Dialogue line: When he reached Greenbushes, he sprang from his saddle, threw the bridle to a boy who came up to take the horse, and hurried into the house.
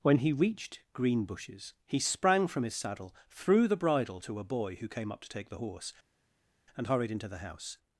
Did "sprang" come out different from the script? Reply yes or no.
no